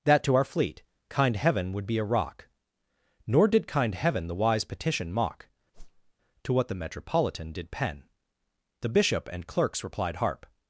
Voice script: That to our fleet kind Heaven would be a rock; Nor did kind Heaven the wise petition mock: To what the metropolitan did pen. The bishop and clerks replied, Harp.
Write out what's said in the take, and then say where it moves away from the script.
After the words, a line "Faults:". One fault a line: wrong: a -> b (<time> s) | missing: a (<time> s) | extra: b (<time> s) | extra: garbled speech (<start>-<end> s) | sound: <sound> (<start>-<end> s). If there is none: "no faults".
That to our fleet kind Heaven would be a rock; Nor did kind Heaven the wise petition mock: To what the metropolitan did pen. The bishop and clerks replied, Harp.
Faults:
sound: whoosh (5.7-6.1 s)